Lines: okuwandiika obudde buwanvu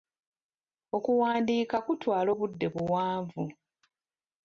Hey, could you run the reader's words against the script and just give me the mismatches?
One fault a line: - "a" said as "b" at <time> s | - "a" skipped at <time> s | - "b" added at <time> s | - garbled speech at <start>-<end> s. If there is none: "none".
- "kutwala" added at 1.9 s